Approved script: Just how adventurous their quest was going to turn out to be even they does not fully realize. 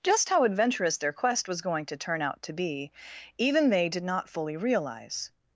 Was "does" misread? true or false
true